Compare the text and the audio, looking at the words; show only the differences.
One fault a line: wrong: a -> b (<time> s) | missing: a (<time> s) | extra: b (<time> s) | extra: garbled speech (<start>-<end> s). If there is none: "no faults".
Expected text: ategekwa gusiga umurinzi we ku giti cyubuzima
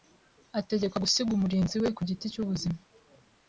no faults